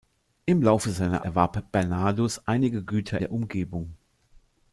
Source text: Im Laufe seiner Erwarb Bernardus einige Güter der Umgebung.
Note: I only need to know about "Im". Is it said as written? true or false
true